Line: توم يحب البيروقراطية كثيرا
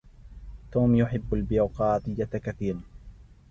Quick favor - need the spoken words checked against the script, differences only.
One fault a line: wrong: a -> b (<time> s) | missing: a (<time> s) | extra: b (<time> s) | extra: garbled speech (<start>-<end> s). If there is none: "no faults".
no faults